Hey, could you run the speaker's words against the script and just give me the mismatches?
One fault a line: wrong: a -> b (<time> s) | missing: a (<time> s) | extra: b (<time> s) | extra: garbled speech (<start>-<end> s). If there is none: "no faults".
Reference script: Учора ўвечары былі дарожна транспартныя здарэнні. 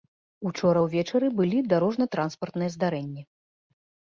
no faults